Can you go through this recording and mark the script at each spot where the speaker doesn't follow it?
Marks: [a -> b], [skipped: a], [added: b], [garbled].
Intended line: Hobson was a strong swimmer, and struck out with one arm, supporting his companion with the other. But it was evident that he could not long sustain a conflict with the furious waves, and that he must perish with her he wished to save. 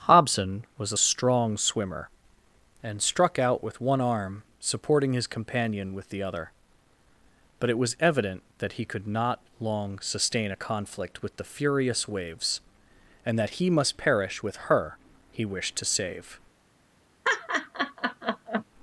Hobson was a strong swimmer, and struck out with one arm, supporting his companion with the other. But it was evident that he could not long sustain a conflict with the furious waves, and that he must perish with her he wished to save.